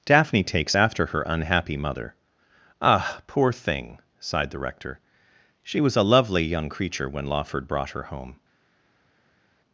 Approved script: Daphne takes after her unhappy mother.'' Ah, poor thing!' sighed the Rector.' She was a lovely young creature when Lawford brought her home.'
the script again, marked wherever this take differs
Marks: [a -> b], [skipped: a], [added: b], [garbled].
Daphne takes after her unhappy mother.'' Ah, poor thing!' sighed the Rector.' She was a lovely young creature when Lawford brought her home.'